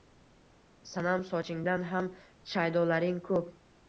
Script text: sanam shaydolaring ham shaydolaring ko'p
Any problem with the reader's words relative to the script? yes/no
yes